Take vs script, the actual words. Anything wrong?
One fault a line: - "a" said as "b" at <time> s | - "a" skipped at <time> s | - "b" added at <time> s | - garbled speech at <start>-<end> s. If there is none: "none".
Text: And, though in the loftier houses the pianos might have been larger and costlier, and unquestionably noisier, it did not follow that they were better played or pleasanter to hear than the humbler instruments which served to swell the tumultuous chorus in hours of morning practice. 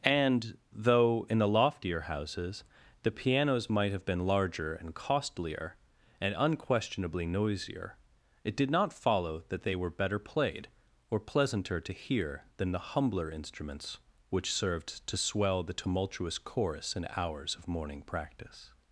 none